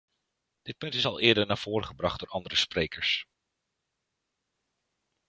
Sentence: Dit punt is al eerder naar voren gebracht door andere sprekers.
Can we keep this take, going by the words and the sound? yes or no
yes